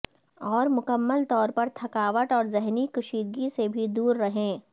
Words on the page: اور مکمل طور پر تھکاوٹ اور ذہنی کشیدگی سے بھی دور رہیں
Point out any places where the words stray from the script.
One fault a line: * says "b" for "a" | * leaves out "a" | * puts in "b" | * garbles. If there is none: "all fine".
all fine